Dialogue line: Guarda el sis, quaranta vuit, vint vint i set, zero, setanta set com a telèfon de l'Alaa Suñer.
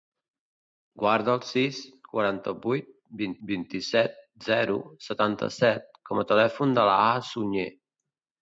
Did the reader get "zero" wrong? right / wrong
right